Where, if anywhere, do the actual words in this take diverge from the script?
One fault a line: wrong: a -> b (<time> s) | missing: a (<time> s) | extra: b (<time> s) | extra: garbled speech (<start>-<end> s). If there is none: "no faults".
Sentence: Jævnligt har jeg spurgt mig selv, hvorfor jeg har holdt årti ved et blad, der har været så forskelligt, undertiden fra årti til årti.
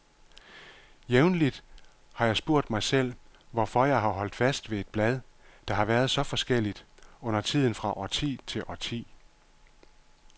wrong: årti -> fast (4.3 s)